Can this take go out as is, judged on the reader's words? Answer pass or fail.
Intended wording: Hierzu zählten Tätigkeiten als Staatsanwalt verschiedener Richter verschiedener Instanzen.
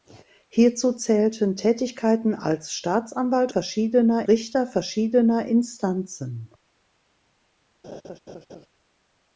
pass